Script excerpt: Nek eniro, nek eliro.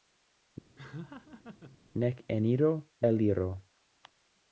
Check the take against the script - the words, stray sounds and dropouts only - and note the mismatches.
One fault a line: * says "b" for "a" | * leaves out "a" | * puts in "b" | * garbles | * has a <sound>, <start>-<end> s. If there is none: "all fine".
* has a laugh, 0.8-1.8 s
* leaves out "nek"